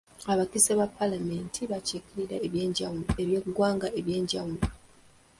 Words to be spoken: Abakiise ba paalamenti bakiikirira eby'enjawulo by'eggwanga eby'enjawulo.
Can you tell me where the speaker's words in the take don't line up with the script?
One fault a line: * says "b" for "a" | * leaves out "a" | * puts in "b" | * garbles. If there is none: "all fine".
all fine